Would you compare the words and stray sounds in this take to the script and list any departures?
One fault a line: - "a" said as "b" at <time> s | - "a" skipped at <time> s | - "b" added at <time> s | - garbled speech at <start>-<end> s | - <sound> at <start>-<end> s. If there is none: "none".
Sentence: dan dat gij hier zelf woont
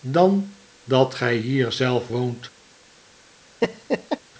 - laugh at 3.6-4.2 s